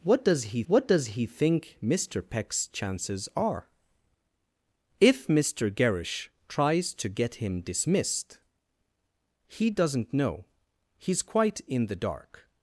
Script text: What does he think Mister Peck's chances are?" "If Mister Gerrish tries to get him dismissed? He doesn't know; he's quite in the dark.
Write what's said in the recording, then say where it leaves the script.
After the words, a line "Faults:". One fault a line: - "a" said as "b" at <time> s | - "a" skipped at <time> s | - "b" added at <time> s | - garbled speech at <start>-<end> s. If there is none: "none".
What does he what does he think Mister Peck's chances are?" "If Mister Gerrish tries to get him dismissed? He doesn't know; he's quite in the dark.
Faults:
- "what does he" added at 0.7 s